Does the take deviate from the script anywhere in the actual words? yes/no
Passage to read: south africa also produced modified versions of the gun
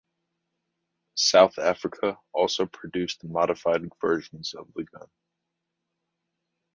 no